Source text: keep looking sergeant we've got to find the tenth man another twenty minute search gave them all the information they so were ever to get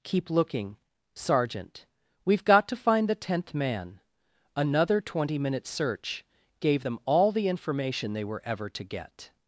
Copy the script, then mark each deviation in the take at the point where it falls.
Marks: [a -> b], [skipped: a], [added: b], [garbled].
keep looking sergeant we've got to find the tenth man another twenty minute search gave them all the information they [skipped: so] were ever to get